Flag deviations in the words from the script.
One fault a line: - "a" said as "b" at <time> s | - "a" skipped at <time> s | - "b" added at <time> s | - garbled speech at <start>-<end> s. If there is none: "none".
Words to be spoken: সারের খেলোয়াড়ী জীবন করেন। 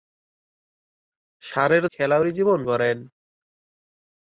none